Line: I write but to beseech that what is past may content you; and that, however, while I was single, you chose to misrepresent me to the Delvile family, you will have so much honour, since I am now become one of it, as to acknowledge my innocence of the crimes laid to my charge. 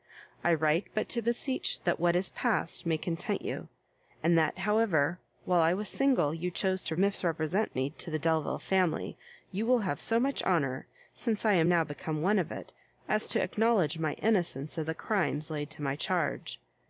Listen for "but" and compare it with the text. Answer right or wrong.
right